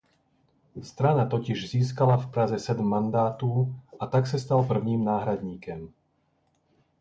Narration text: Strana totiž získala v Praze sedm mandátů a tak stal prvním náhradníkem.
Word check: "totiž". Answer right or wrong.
right